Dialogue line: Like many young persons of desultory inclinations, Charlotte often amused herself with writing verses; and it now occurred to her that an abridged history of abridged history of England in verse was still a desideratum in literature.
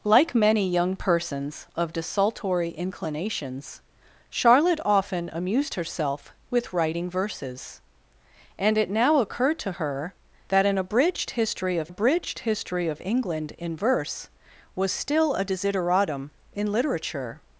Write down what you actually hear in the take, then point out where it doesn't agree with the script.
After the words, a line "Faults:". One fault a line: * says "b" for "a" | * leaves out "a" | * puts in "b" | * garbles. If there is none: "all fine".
Like many young persons of desultory inclinations, Charlotte often amused herself with writing verses; and it now occurred to her that an abridged history of abridged history of England in verse was still a desideratum in literature.
Faults:
all fine